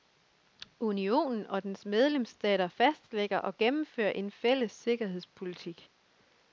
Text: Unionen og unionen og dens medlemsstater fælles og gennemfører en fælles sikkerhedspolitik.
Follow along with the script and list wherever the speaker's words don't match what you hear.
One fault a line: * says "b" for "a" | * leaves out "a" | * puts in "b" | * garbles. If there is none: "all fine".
* leaves out "unionen og"
* says "fastlægger" for "fælles"